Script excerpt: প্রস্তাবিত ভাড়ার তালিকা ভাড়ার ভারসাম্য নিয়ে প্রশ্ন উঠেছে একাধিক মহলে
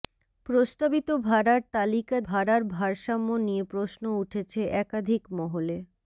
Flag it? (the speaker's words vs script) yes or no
no